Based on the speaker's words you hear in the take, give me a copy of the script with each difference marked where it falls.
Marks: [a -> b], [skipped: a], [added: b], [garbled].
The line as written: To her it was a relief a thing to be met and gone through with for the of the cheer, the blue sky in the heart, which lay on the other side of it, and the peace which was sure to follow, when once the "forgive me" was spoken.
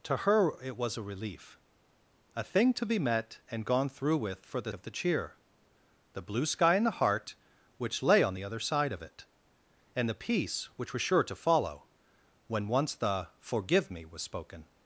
To her it was a relief a thing to be met and gone through with for the of the cheer, the blue sky in the heart, which lay on the other side of it, and the peace which was sure to follow, when once the "forgive me" was spoken.